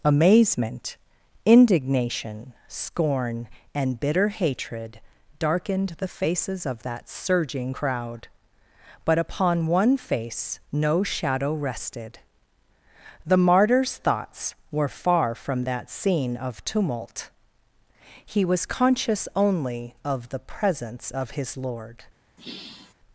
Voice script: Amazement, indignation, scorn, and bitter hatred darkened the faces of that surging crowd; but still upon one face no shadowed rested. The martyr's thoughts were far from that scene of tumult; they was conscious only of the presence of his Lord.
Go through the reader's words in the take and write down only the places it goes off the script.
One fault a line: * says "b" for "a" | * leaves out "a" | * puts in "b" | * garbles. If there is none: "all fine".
* leaves out "still"
* says "shadow" for "shadowed"
* says "he" for "they"